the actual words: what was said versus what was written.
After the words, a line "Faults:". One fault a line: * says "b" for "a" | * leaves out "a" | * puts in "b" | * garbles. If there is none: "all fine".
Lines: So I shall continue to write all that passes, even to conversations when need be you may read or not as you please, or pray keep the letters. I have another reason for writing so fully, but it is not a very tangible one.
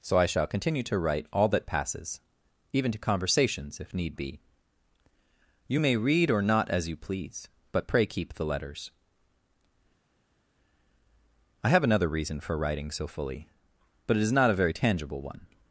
So I shall continue to write all that passes, even to conversations if need be you may read or not as you please, but pray keep the letters. I have another reason for writing so fully, but it is not a very tangible one.
Faults:
* says "if" for "when"
* says "but" for "or"